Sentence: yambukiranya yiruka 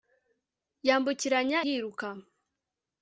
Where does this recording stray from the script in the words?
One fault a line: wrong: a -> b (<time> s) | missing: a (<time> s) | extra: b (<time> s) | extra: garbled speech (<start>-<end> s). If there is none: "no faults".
no faults